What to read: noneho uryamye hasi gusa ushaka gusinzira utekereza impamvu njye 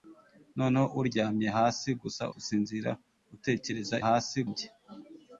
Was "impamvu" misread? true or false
true